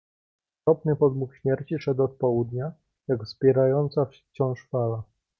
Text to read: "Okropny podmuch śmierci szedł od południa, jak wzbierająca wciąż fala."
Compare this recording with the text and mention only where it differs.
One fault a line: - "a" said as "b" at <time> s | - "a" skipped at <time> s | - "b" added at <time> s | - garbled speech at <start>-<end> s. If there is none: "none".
none